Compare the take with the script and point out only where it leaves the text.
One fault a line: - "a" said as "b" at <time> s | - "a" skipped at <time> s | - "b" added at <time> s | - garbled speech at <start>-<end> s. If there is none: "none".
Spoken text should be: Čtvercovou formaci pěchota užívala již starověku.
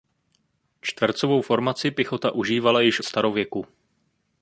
none